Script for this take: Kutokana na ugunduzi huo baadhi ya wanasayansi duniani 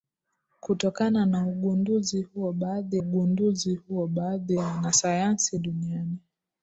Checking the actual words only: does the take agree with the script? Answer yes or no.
no